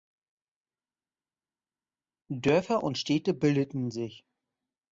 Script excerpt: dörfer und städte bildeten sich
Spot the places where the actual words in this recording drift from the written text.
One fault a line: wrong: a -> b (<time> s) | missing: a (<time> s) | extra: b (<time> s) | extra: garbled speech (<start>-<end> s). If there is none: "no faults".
no faults